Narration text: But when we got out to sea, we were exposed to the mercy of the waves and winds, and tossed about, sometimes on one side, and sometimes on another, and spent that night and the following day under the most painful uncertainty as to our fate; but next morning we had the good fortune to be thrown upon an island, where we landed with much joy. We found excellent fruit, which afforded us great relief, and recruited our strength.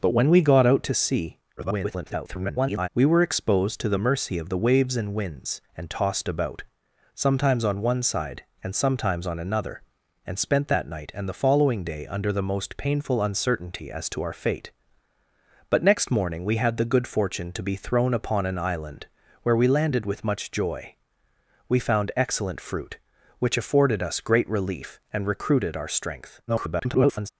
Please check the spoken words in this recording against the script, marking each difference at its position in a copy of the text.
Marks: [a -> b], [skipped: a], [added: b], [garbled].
But when we got out to sea, [garbled] we were exposed to the mercy of the waves and winds, and tossed about, sometimes on one side, and sometimes on another, and spent that night and the following day under the most painful uncertainty as to our fate; but next morning we had the good fortune to be thrown upon an island, where we landed with much joy. We found excellent fruit, which afforded us great relief, and recruited our strength. [garbled]